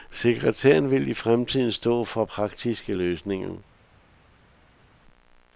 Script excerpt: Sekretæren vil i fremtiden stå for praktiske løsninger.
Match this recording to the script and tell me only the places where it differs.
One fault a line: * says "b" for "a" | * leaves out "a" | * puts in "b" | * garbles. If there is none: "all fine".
all fine